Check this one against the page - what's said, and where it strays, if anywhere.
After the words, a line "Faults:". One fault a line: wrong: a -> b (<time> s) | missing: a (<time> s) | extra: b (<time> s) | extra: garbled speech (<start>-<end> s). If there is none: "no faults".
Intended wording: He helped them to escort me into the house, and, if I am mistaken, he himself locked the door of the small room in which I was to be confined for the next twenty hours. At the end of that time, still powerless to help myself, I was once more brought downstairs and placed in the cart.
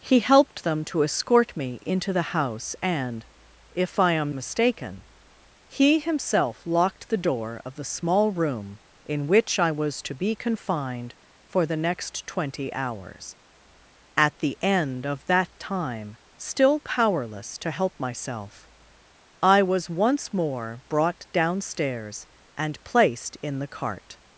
He helped them to escort me into the house, and, if I am mistaken, he himself locked the door of the small room in which I was to be confined for the next twenty hours. At the end of that time, still powerless to help myself, I was once more brought downstairs and placed in the cart.
Faults:
no faults